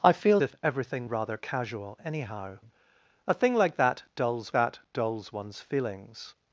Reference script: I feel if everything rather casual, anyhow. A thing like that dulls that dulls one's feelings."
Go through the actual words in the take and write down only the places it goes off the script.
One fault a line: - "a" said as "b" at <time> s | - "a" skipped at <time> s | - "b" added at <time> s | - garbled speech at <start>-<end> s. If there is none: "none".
none